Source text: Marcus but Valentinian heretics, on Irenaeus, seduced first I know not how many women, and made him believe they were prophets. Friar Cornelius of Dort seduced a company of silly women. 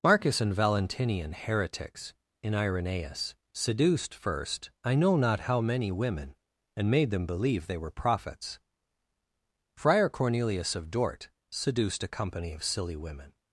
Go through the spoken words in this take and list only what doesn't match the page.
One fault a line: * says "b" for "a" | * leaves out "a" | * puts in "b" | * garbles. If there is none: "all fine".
* says "and" for "but"
* says "in" for "on"
* says "them" for "him"